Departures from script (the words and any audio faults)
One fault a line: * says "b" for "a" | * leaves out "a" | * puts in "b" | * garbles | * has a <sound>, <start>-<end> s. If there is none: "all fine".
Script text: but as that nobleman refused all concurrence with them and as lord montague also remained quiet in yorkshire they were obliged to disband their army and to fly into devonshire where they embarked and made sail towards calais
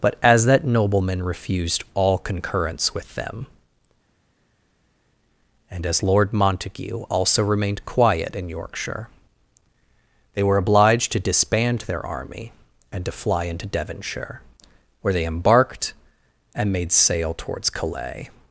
all fine